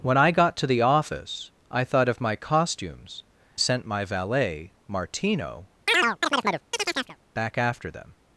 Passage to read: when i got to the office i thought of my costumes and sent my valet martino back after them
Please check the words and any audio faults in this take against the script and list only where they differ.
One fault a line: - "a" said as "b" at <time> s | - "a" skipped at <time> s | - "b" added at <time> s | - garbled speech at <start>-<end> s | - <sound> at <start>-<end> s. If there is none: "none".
- "and" skipped at 3.2 s
- chirp at 5.9-7.2 s